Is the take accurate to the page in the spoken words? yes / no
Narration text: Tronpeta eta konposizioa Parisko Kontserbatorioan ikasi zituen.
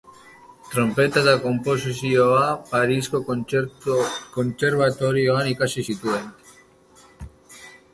yes